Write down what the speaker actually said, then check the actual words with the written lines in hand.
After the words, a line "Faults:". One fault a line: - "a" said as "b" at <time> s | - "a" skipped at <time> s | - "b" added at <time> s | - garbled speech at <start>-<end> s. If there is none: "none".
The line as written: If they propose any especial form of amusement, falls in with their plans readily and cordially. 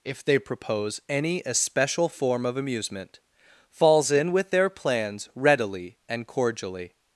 If they propose any especial form of amusement, falls in with their plans readily and cordially.
Faults:
none